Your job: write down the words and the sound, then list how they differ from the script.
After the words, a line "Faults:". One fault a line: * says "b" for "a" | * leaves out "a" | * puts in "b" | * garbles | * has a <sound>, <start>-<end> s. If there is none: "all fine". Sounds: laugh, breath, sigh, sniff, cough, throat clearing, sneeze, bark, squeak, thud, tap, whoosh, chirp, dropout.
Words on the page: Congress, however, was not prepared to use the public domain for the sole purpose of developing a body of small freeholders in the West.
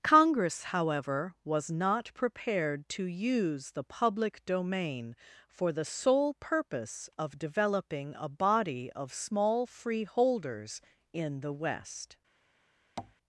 Congress, however, was not prepared to use the public domain for the sole purpose of developing a body of small freeholders in the West.
Faults:
* has a tap, 13.0-13.2 s